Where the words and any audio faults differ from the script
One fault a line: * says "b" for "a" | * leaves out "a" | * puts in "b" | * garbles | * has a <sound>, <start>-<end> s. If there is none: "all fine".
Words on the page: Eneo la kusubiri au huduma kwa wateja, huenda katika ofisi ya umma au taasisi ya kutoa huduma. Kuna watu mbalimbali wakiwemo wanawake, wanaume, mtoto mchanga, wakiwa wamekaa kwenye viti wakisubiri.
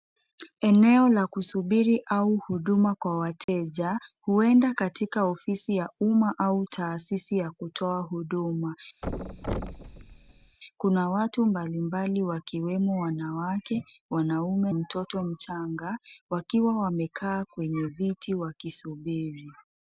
* has a dropout, 3.4-3.5 s
* has a thud, 9.0-10.6 s